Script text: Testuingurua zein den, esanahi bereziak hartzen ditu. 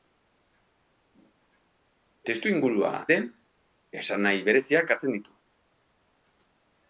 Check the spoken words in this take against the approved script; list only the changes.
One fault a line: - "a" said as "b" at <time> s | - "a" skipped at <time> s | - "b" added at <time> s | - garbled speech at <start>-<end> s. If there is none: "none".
- "zein" skipped at 2.9 s